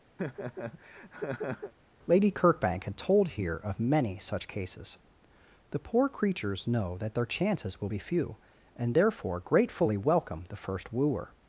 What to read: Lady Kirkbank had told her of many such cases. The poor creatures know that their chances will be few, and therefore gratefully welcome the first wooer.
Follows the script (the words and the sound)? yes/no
no